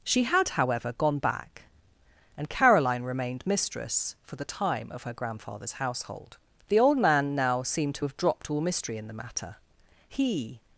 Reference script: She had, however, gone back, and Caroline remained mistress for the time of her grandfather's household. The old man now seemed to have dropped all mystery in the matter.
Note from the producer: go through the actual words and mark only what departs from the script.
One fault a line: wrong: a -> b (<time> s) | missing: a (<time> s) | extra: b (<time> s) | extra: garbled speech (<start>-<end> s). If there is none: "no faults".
extra: He (10.1 s)